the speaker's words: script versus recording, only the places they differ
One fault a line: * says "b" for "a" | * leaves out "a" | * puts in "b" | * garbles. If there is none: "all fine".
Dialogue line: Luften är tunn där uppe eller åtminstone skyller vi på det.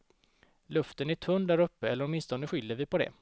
all fine